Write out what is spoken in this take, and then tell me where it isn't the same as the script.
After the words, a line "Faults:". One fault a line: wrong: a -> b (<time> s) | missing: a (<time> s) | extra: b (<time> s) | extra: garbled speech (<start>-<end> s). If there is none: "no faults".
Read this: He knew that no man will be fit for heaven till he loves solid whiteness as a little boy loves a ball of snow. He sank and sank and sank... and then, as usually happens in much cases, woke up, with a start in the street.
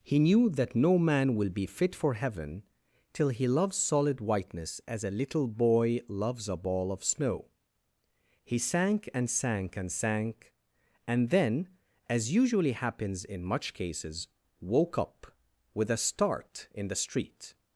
He knew that no man will be fit for heaven till he loves solid whiteness as a little boy loves a ball of snow. He sank and sank and sank... and then, as usually happens in much cases, woke up, with a start in the street.
Faults:
no faults